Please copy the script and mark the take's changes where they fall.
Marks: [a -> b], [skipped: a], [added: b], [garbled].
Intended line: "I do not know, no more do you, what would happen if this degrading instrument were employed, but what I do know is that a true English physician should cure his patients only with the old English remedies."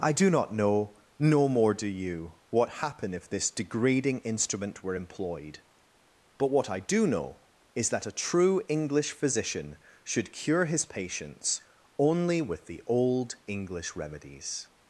"I do not know, no more do you, what [skipped: would] happen if this degrading instrument were employed, but what I do know is that a true English physician should cure his patients only with the old English remedies."